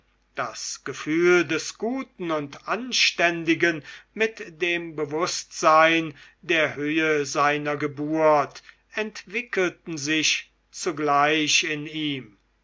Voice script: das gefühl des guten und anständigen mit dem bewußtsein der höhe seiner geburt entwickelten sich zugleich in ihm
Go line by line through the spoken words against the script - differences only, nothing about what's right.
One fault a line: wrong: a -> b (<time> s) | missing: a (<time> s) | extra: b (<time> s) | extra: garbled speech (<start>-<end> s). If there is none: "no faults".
no faults